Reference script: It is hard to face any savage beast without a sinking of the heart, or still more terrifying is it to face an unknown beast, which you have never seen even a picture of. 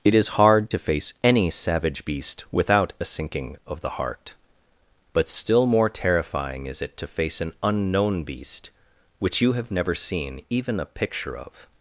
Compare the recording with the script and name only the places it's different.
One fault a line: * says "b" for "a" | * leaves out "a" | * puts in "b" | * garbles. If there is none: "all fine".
* says "but" for "or"